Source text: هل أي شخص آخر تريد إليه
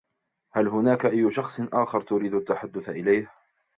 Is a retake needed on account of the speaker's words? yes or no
yes